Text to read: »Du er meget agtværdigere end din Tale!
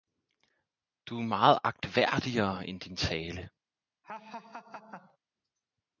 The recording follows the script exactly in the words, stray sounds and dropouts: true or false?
false